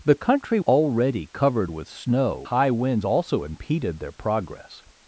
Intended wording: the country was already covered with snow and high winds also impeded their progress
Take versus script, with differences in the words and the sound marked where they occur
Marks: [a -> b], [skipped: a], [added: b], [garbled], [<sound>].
the country [skipped: was] already covered with snow [skipped: and] high winds also impeded their progress